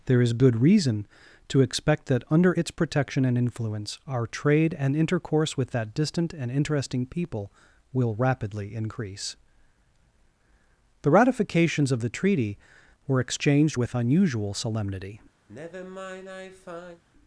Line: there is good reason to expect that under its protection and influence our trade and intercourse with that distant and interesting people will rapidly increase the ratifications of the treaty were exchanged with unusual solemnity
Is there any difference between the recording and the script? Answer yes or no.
no